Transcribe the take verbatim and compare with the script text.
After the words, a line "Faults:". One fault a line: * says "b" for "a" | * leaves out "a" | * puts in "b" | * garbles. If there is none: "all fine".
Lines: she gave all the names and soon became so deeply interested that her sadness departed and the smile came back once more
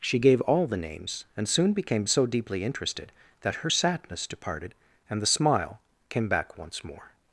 she gave all the names and soon became so deeply interested that her sadness departed and the smile came back once more
Faults:
all fine